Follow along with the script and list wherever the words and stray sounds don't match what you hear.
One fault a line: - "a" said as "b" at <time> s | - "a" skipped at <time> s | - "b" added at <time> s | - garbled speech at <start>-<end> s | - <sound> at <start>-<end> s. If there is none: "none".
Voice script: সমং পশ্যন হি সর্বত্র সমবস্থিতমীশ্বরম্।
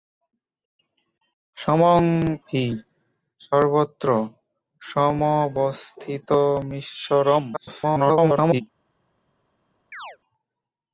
- "পশ্যন" skipped at 2.0 s
- garbled speech at 7.5-8.6 s
- chirp at 9.9-10.2 s